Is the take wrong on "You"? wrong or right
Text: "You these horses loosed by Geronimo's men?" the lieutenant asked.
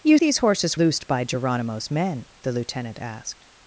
right